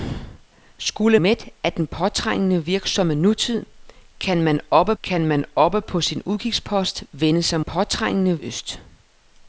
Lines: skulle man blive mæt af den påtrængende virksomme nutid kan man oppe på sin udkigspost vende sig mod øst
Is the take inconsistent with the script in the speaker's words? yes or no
yes